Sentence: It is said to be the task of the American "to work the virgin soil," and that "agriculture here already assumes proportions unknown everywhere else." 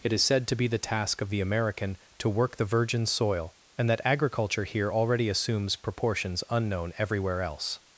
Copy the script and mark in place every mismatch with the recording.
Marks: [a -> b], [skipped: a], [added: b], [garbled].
It is said to be the task of the American "to work the virgin soil," and that "agriculture here already assumes proportions unknown everywhere else."